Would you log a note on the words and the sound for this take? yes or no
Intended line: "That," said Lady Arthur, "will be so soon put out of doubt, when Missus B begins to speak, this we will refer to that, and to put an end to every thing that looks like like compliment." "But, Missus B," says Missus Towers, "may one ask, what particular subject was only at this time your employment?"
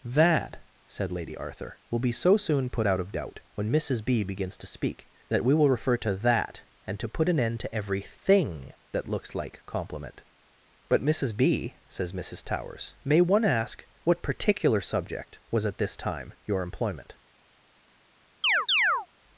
yes